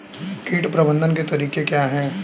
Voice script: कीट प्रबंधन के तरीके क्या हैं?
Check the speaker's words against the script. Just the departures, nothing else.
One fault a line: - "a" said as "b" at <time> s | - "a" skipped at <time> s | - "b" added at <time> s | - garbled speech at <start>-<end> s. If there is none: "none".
none